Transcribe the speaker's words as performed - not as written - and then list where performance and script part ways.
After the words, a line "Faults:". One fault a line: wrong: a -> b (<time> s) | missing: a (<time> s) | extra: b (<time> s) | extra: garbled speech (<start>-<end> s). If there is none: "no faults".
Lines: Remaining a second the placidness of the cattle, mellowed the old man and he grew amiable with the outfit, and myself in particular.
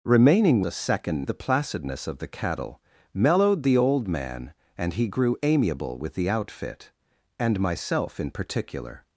Remaining a second the placidness of the cattle, mellowed the old man and he grew amiable with the outfit, and myself in particular.
Faults:
no faults